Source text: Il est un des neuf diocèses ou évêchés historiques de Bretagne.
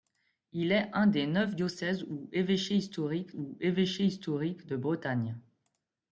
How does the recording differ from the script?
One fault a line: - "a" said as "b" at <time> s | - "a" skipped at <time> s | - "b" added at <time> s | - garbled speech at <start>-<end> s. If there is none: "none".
- "ou évêchés historiques" added at 3.3 s